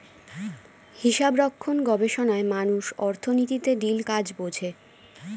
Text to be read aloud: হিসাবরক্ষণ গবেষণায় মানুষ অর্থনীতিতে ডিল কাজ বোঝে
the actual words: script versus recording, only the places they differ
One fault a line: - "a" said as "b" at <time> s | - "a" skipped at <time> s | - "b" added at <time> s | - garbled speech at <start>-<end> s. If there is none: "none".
none